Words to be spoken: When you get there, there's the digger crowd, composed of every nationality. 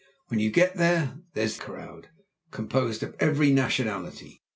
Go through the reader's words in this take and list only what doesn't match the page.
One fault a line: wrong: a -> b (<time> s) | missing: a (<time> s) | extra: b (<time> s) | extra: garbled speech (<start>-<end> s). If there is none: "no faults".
missing: the digger (1.6 s)